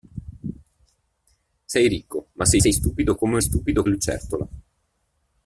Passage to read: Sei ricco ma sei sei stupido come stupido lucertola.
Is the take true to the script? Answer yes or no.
yes